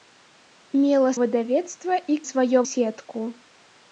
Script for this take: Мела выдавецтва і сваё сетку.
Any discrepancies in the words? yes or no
no